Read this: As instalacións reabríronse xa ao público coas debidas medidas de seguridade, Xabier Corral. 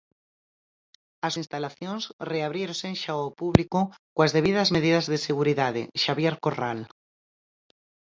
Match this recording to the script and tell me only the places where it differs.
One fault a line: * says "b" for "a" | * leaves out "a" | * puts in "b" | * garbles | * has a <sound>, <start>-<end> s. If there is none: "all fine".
all fine